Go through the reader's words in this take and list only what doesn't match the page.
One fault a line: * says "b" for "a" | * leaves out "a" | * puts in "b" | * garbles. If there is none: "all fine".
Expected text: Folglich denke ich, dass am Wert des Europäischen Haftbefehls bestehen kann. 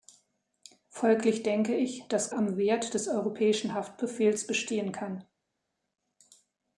all fine